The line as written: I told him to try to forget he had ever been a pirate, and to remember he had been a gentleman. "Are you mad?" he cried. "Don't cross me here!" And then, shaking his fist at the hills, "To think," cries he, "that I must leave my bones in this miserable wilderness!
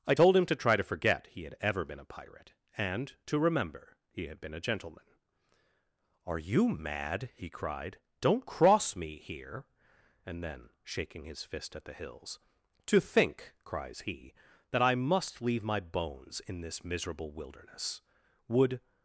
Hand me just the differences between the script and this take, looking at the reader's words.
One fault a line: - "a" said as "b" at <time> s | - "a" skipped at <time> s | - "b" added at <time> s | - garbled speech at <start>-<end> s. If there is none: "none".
- "Would" added at 18.5 s